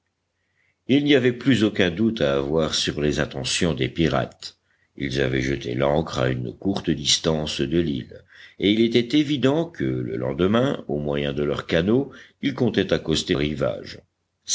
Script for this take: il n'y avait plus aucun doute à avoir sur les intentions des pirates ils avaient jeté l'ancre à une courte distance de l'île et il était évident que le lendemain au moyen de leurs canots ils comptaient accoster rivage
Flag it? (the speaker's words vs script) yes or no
no